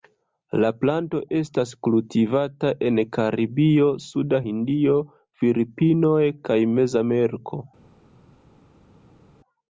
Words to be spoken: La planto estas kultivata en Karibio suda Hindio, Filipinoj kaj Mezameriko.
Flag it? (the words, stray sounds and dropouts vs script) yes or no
no